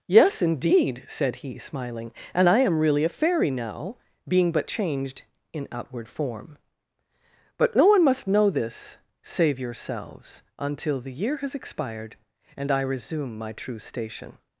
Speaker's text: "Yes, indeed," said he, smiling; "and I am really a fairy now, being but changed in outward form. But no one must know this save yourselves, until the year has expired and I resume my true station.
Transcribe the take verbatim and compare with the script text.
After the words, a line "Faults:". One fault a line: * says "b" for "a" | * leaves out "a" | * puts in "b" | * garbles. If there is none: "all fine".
"Yes, indeed," said he, smiling; "and I am really a fairy now, being but changed in outward form. But no one must know this save yourselves, until the year has expired and I resume my true station.
Faults:
all fine